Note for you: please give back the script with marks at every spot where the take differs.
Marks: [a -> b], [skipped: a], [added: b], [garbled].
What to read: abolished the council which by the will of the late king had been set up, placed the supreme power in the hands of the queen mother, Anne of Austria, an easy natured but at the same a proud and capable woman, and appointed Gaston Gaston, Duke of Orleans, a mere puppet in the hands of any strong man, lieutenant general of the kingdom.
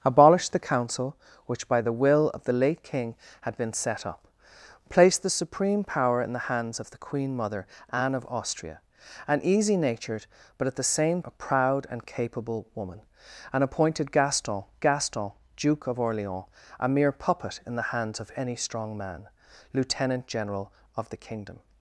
abolished the council which by the will of the late king had been set up, placed the supreme power in the hands of the queen mother, Anne of Austria, an easy natured but at the same a proud and capable woman, and appointed Gaston Gaston, Duke of Orleans, a mere puppet in the hands of any strong man, lieutenant general of the kingdom.